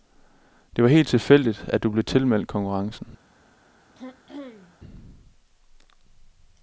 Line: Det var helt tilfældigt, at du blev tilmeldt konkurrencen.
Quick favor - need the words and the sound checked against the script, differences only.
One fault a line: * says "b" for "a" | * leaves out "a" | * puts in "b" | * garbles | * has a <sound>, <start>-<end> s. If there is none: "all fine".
* has a throat clearing, 4.0-4.8 s